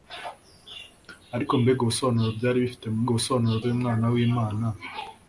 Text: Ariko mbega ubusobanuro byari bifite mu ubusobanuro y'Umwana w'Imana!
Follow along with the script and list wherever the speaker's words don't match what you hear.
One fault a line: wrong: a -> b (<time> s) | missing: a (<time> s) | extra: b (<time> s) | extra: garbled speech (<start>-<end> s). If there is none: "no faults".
no faults